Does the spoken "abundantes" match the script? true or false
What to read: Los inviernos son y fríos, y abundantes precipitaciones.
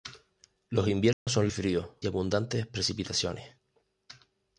true